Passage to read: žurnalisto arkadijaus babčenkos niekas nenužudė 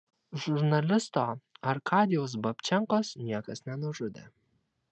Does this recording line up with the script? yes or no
yes